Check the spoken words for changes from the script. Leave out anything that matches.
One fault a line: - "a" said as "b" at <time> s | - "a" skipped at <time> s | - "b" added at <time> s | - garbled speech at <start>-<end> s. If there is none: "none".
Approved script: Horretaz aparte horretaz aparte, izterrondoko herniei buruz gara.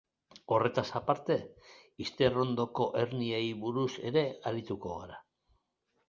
- "horretaz aparte" skipped at 1.4 s
- "ere arituko" added at 4.1 s